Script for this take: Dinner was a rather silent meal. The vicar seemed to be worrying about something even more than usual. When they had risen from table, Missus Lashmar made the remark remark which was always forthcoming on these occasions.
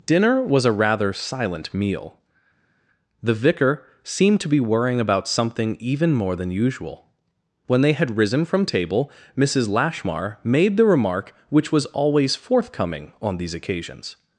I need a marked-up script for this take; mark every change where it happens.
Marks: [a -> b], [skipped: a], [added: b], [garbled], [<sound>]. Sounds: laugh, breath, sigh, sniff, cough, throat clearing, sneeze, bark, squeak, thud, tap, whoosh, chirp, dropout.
Dinner was a rather silent meal. The vicar seemed to be worrying about something even more than usual. When they had risen from table, Missus Lashmar made the remark [skipped: remark] which was always forthcoming on these occasions.